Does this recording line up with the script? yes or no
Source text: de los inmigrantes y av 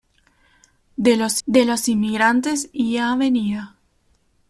no